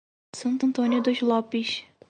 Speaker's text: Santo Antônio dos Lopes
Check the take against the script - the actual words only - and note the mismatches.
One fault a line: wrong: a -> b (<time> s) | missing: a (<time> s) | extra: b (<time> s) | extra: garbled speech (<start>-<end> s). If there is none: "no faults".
no faults